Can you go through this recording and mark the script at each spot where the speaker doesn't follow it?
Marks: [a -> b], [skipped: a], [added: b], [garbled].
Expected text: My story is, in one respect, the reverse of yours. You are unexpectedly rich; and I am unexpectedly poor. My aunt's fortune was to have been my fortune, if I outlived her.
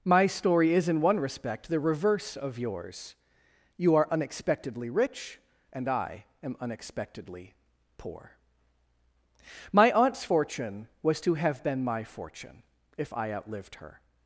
My story is, in one respect, the reverse of yours. You are unexpectedly rich; and I am unexpectedly poor. My aunt's fortune was to have been my fortune, if I outlived her.